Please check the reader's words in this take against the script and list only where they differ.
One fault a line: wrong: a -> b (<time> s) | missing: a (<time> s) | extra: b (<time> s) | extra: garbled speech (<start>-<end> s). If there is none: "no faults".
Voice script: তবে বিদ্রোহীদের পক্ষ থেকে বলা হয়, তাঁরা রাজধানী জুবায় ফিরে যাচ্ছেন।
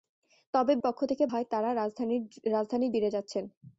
missing: বিদ্রোহীদের (0.7 s)
missing: বলা (1.2 s)
missing: জুবায় (2.9 s)